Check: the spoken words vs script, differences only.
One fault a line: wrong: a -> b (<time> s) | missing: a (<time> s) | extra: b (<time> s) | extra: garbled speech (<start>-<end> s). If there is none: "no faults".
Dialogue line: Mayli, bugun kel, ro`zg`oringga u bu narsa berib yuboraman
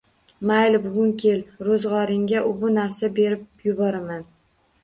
no faults